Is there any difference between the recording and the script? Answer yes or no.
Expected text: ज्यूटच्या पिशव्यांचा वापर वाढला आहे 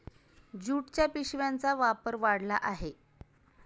no